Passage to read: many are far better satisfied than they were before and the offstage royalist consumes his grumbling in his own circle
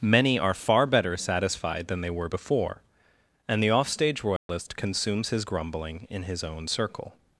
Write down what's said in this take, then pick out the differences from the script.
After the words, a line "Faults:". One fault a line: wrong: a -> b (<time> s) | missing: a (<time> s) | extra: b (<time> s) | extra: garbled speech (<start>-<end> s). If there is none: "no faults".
many are far better satisfied than they were before and the offstage royalist consumes his grumbling in his own circle
Faults:
no faults